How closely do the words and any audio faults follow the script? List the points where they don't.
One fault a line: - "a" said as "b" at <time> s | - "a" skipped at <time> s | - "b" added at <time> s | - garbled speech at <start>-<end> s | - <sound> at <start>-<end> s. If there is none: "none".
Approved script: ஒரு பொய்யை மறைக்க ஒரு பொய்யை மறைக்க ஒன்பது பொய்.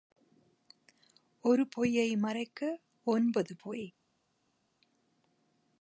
- "ஒரு பொய்யை மறைக்க" skipped at 2.8 s